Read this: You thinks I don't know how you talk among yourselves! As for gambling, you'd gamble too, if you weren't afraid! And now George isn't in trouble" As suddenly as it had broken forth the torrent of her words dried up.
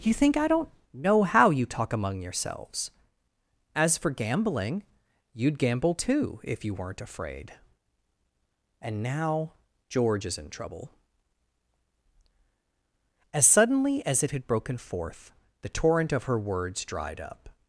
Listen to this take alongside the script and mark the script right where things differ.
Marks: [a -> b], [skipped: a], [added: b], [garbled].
You [thinks -> think] I don't know how you talk among yourselves! As for gambling, you'd gamble too, if you weren't afraid! And now George [isn't -> is] in trouble" As suddenly as it had broken forth the torrent of her words dried up.